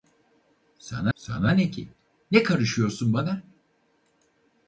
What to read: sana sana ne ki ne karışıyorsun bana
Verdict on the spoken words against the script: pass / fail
pass